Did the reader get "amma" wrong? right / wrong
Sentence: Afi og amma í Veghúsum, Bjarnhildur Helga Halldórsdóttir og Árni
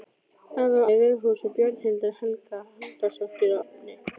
wrong